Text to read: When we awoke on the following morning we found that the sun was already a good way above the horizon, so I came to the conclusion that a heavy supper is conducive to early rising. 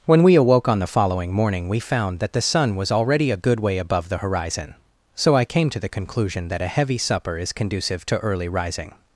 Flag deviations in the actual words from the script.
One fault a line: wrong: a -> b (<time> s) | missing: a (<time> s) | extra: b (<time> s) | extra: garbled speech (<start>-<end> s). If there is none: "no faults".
no faults